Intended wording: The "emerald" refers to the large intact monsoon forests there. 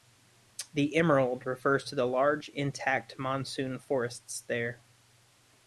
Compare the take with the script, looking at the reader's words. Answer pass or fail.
pass